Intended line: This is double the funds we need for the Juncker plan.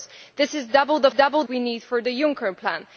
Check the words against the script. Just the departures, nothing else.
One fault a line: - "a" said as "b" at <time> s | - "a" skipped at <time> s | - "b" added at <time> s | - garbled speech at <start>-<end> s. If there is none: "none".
- "funds" said as "double" at 1.1 s